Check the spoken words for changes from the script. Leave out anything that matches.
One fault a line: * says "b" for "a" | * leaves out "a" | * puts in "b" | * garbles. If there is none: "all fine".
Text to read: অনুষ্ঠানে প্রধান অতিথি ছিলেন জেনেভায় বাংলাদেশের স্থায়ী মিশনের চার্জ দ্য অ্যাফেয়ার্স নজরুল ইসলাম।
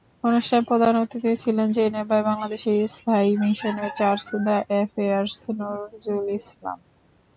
all fine